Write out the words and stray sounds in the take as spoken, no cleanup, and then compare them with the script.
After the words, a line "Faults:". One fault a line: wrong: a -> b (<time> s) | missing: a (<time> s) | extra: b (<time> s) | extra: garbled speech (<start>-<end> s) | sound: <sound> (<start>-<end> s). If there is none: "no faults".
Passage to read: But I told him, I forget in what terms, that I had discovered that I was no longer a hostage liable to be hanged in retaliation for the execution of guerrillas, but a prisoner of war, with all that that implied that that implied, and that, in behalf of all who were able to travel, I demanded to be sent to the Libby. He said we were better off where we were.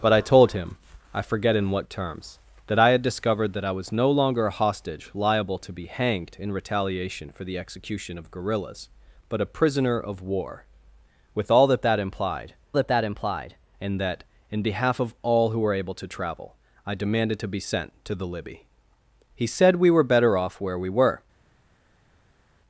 But I told him, I forget in what terms, that I had discovered that I was no longer a hostage liable to be hanged in retaliation for the execution of guerrillas, but a prisoner of war, with all that that implied that that implied, and that, in behalf of all who were able to travel, I demanded to be sent to the Libby. He said we were better off where we were.
Faults:
no faults